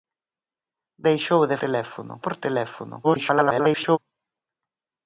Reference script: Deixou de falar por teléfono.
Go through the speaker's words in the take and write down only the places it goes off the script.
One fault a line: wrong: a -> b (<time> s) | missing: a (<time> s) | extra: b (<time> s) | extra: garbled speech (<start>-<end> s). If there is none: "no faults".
wrong: falar -> teléfono (1.6 s)
extra: garbled speech (3.0-4.0 s)